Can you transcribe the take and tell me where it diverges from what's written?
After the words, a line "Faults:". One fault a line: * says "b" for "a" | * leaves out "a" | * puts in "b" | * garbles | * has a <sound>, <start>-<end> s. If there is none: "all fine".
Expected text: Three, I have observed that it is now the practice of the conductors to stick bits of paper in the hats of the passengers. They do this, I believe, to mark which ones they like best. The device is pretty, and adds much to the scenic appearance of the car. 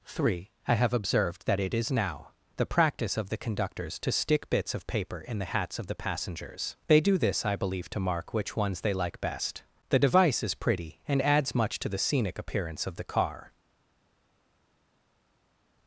Three, I have observed that it is now the practice of the conductors to stick bits of paper in the hats of the passengers. They do this, I believe, to mark which ones they like best. The device is pretty, and adds much to the scenic appearance of the car.
Faults:
all fine